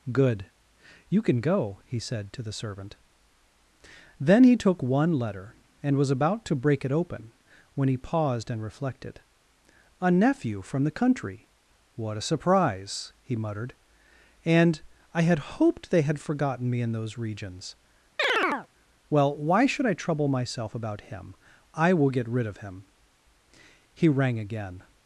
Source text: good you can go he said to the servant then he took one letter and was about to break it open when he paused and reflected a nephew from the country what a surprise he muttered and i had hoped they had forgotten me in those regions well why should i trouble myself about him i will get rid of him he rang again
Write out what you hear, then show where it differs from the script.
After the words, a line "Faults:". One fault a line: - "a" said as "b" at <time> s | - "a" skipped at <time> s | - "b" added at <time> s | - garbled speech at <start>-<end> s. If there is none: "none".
good you can go he said to the servant then he took one letter and was about to break it open when he paused and reflected a nephew from the country what a surprise he muttered and i had hoped they had forgotten me in those regions well why should i trouble myself about him i will get rid of him he rang again
Faults:
none